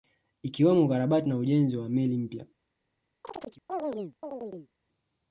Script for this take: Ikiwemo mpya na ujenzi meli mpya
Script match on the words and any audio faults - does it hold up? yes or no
no